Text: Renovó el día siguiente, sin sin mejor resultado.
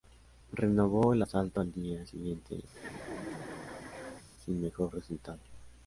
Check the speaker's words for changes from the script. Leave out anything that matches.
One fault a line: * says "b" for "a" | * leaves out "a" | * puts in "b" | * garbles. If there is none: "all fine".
* puts in "asalto al"
* leaves out "sin"